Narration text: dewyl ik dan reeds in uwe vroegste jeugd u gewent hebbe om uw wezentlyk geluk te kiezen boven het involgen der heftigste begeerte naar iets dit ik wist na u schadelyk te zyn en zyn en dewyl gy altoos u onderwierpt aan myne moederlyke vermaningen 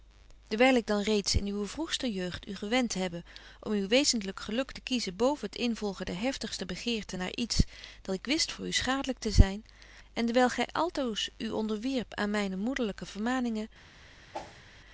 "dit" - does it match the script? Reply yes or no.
no